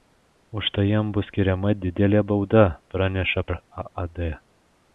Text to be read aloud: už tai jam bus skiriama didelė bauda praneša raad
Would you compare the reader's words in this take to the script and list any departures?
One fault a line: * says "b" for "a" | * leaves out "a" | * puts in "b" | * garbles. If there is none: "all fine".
all fine